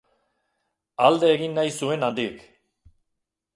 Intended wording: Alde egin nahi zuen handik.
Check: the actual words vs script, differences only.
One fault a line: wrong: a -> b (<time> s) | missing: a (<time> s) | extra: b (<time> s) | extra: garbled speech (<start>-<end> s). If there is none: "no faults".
no faults